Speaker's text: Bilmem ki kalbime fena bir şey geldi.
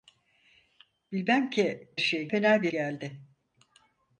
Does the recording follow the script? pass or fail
fail